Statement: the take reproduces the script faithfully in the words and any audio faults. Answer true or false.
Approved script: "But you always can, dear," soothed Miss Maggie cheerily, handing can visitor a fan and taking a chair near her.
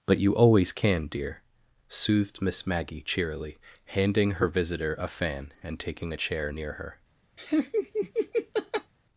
false